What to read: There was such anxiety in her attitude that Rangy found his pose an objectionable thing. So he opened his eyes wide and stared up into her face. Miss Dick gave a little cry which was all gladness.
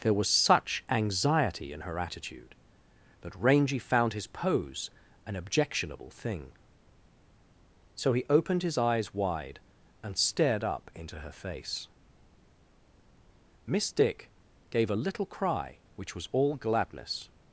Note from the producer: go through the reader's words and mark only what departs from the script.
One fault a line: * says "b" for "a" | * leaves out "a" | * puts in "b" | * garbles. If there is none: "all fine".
all fine